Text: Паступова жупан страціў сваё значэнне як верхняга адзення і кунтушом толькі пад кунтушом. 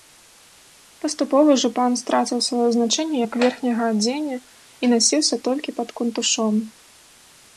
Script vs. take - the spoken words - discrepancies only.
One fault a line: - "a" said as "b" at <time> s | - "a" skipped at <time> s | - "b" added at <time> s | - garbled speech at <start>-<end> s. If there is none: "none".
- "кунтушом" said as "насіўся" at 5.0 s